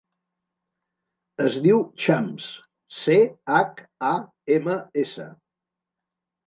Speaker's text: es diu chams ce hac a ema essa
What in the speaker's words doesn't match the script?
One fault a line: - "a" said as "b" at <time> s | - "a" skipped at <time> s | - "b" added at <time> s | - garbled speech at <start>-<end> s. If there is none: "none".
none